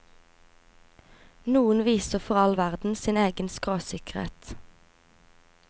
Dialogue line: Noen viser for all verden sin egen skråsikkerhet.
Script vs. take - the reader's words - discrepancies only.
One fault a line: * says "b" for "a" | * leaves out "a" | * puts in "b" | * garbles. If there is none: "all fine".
all fine